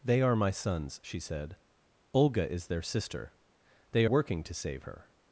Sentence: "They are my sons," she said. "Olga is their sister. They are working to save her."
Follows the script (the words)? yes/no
no